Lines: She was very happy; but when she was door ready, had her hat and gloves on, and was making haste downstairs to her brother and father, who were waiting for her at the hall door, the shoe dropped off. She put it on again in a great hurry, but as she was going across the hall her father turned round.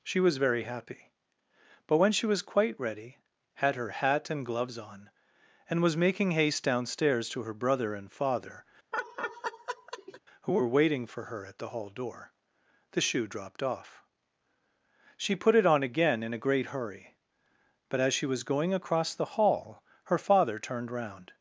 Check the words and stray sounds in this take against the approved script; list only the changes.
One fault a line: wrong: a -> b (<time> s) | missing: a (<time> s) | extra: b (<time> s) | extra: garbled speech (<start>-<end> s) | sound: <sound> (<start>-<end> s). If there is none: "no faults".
wrong: door -> quite (2.4 s)
sound: laugh (8.9-10.2 s)